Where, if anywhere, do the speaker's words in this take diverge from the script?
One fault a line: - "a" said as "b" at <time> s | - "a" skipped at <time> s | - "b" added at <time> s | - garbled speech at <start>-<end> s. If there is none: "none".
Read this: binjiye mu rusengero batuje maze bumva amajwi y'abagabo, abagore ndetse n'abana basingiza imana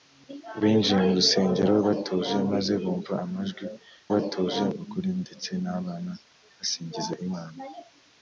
- "y'abagabo" said as "batuje" at 4.1 s